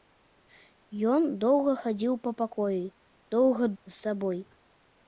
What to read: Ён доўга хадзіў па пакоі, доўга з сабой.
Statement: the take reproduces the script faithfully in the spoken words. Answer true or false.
true